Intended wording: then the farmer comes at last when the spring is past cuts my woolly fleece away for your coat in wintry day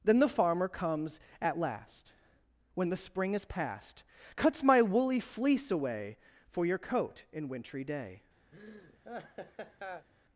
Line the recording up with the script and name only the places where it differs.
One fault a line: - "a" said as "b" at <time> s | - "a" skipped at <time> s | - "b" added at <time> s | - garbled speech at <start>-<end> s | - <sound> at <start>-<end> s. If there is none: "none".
- laugh at 8.5-10.1 s